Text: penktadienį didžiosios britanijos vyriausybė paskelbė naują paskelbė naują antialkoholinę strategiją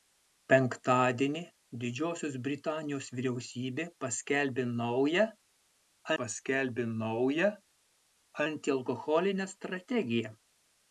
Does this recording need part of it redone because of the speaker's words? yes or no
no